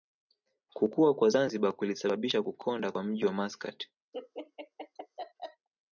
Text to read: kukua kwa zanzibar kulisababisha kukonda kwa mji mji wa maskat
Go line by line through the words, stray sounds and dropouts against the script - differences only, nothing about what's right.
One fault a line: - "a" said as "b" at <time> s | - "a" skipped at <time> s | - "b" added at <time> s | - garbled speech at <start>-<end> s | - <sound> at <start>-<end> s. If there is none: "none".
- "mji" skipped at 3.3 s
- laugh at 4.1-5.7 s